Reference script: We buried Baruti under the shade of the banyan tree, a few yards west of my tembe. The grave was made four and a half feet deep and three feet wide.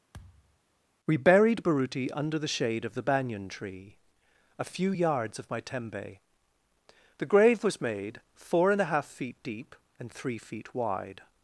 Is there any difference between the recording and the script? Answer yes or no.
yes